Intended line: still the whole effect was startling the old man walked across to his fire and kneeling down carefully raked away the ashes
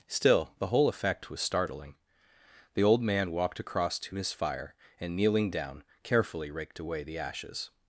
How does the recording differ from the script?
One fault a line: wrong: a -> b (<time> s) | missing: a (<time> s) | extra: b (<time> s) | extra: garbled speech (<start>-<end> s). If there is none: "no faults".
no faults